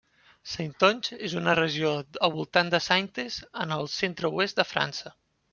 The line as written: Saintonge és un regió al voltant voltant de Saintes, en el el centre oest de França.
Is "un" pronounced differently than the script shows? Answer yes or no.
yes